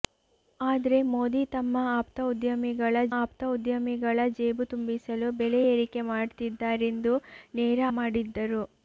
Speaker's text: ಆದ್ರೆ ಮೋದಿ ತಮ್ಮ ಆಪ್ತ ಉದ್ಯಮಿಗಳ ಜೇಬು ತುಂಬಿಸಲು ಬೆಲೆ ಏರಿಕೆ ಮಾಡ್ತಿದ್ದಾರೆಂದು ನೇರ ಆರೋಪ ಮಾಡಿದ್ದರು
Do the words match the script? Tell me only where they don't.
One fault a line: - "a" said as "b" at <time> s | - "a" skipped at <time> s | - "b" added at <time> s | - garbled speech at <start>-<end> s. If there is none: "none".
- "ಆಪ್ತ ಉದ್ಯಮಿಗಳ" added at 3.1 s
- "ಆರೋಪ" skipped at 7.8 s